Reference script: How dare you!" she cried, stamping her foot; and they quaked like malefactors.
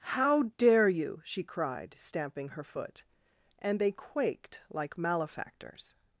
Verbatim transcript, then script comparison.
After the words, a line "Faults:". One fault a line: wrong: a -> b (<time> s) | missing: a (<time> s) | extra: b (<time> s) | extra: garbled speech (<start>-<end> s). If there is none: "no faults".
How dare you!" she cried, stamping her foot; and they quaked like malefactors.
Faults:
no faults